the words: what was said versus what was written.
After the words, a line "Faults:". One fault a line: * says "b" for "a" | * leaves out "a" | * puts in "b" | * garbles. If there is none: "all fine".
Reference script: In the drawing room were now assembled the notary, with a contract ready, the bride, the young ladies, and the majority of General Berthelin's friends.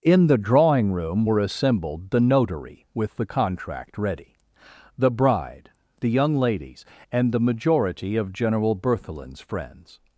In the drawing room were assembled the notary, with the contract ready, the bride, the young ladies, and the majority of General Berthelin's friends.
Faults:
* leaves out "now"
* says "the" for "a"